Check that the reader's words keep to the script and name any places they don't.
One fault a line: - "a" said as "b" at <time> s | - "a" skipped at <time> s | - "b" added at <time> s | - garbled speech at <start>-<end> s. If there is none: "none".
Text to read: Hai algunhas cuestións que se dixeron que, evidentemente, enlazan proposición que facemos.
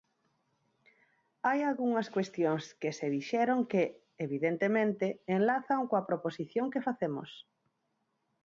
- "coa" added at 5.9 s